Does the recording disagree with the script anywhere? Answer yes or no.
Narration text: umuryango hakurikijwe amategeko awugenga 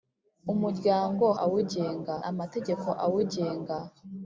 yes